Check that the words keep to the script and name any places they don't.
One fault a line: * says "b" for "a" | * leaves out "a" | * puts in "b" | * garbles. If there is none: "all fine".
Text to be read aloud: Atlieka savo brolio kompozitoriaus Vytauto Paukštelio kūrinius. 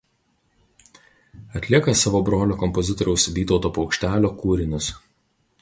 all fine